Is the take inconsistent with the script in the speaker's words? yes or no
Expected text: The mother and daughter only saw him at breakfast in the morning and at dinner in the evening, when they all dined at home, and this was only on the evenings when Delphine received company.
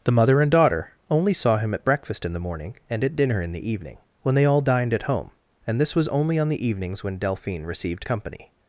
no